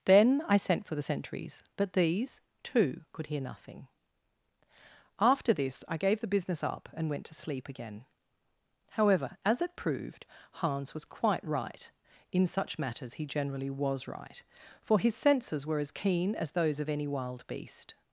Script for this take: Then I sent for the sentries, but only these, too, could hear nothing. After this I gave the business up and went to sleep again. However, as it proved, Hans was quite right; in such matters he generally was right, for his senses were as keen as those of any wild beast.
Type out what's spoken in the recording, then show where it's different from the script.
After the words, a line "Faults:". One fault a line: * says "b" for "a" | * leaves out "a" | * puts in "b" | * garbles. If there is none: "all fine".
Then I sent for the sentries, but these, too, could hear nothing. After this I gave the business up and went to sleep again. However, as it proved, Hans was quite right; in such matters he generally was right, for his senses were as keen as those of any wild beast.
Faults:
* leaves out "only"